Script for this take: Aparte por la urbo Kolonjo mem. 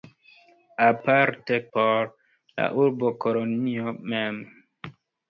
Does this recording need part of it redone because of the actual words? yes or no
no